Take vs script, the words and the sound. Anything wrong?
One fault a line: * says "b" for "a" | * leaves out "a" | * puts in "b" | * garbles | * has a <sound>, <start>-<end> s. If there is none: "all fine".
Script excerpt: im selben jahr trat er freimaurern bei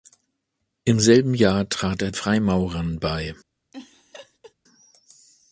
* has a laugh, 3.7-4.5 s